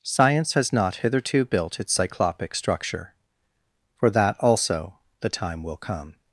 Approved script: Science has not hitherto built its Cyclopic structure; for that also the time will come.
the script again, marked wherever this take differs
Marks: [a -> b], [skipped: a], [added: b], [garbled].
Science has not hitherto built its Cyclopic structure; for that also the time will come.